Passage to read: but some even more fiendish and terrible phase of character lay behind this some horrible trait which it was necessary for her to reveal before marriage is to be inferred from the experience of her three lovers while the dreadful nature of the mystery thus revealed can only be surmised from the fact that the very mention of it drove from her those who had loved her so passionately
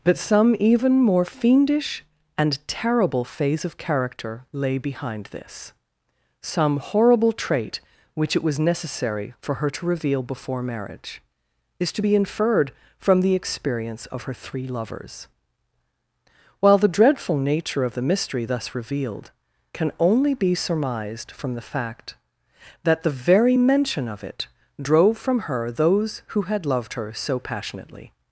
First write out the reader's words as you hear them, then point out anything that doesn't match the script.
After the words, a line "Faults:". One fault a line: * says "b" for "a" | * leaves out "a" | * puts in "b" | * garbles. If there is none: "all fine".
but some even more fiendish and terrible phase of character lay behind this some horrible trait which it was necessary for her to reveal before marriage is to be inferred from the experience of her three lovers while the dreadful nature of the mystery thus revealed can only be surmised from the fact that the very mention of it drove from her those who had loved her so passionately
Faults:
all fine